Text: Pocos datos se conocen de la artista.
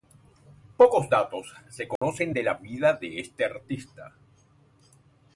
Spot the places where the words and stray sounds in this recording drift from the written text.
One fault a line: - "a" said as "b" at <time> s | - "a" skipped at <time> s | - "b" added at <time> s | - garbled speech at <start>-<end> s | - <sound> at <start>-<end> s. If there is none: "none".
- dropout at 2.0-2.0 s
- "vida de este" added at 2.5 s